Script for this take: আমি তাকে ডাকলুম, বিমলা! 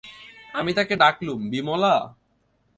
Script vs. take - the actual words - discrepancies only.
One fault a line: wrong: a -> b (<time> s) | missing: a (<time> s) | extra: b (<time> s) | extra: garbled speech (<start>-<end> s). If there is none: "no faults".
no faults